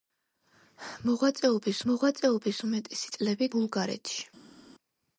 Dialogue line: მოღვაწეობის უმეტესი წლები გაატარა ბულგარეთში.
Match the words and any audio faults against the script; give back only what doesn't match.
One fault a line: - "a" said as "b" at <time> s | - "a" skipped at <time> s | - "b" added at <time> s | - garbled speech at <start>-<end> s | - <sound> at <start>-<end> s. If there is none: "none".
- "მოღვაწეობის" added at 1.9 s
- "გაატარა" skipped at 3.5 s